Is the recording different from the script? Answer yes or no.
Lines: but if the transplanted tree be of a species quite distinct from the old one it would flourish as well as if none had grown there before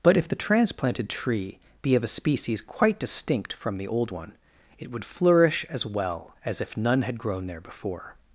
no